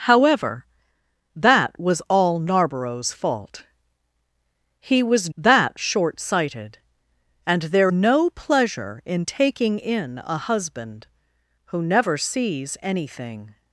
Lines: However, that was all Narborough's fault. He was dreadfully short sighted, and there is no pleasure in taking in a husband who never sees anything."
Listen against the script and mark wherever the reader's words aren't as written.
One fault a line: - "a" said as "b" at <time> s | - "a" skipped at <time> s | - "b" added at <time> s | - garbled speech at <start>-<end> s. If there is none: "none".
- "dreadfully" said as "that" at 5.4 s
- "is" skipped at 7.9 s